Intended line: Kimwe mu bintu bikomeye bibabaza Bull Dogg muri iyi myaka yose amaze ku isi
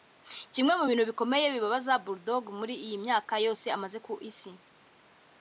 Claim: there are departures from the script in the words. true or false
false